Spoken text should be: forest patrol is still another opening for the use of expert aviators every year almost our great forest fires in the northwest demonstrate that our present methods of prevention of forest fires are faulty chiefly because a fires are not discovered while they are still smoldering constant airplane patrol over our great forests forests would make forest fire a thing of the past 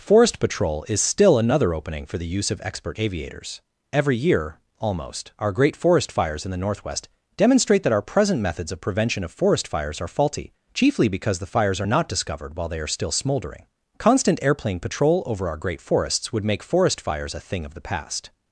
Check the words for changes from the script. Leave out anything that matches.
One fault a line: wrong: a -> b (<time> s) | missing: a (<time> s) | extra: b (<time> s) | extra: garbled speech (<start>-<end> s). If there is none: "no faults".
wrong: a -> the (11.4 s)
missing: forests (16.3 s)
wrong: fire -> fires (17.0 s)